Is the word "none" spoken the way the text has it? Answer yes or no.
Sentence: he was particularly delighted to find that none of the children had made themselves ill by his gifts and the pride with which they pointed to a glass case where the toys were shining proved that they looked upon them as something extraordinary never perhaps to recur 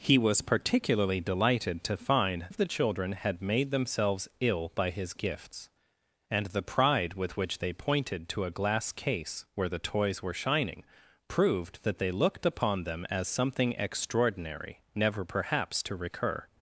no